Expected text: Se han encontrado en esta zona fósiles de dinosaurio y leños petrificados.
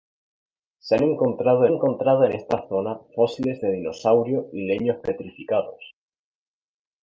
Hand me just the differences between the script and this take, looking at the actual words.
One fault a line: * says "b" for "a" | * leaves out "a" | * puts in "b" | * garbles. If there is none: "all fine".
* puts in "encontrado"